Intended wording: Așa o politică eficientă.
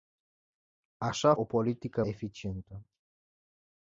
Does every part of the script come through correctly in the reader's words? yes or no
yes